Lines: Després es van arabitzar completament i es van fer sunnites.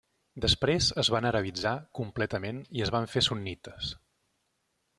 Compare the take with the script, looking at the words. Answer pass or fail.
pass